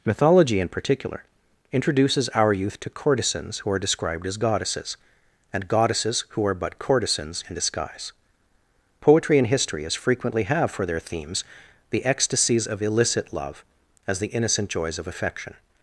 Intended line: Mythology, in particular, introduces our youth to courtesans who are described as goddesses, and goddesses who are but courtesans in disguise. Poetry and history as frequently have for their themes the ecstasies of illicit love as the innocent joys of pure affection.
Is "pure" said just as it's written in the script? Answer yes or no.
no